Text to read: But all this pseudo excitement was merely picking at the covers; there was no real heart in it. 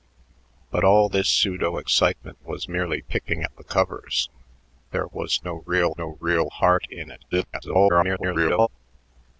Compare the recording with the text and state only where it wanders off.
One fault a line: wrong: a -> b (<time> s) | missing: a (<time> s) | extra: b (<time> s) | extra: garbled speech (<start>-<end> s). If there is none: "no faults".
extra: no real (6.0 s)
extra: garbled speech (7.3-8.7 s)